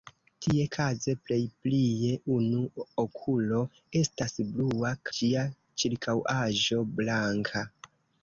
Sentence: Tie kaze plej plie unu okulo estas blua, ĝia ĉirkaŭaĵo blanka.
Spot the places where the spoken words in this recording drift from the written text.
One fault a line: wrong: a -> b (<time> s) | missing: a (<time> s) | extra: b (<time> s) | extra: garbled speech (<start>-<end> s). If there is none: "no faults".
no faults